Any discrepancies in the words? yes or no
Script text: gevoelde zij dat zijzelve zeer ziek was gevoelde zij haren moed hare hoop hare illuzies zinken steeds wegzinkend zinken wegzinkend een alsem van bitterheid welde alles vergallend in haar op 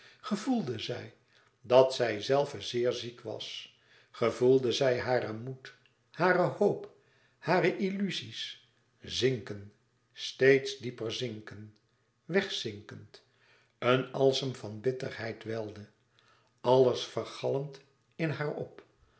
yes